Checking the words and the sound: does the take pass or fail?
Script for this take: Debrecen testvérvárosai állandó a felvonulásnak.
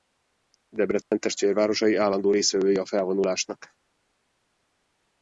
fail